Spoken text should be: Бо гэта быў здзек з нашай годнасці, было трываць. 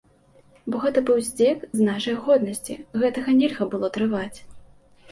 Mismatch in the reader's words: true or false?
true